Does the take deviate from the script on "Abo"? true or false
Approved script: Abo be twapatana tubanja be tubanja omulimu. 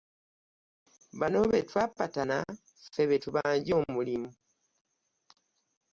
true